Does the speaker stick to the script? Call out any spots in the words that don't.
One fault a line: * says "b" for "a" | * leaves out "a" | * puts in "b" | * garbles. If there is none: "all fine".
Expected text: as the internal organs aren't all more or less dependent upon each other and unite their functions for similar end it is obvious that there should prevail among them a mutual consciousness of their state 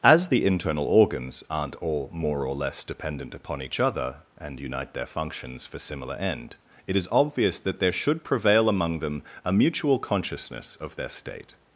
all fine